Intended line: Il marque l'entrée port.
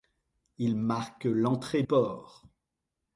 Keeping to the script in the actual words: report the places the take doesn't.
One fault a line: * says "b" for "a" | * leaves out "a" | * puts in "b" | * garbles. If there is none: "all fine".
all fine